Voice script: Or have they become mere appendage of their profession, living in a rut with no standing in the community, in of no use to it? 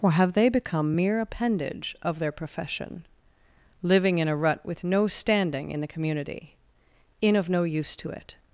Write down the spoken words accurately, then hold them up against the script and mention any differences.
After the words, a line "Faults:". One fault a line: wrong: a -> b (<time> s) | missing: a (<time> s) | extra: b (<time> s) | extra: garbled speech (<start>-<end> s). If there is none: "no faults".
Or have they become mere appendage of their profession, living in a rut with no standing in the community, in of no use to it?
Faults:
no faults